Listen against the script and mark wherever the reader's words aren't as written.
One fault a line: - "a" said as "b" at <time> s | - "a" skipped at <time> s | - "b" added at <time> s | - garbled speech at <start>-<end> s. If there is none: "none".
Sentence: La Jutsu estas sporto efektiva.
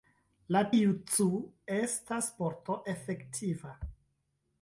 none